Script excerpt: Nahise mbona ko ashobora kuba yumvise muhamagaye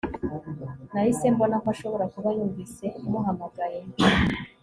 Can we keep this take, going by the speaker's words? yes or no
yes